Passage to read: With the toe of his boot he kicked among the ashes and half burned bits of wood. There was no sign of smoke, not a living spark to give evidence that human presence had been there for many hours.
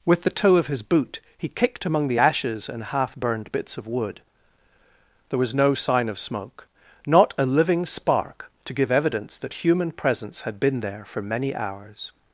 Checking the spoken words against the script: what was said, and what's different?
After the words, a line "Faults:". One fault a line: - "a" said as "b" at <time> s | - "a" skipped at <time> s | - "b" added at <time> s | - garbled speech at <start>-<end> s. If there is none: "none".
With the toe of his boot he kicked among the ashes and half burned bits of wood. There was no sign of smoke, not a living spark to give evidence that human presence had been there for many hours.
Faults:
none